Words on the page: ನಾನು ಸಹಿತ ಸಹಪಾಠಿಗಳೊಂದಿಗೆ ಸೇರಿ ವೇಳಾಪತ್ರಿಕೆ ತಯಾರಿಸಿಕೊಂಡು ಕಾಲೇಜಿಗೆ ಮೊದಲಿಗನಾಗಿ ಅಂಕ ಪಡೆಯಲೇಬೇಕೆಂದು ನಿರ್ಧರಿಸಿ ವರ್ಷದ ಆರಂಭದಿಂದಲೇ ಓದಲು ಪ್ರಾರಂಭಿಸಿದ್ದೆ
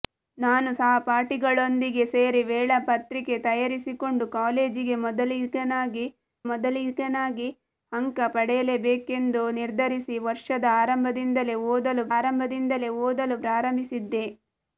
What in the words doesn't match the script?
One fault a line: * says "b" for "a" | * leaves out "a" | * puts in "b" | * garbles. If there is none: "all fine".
* leaves out "ಸಹಿತ"
* puts in "ಮೊದಲಿಗನಾಗಿ"
* puts in "ಆರಂಭದಿಂದಲೇ ಓದಲು"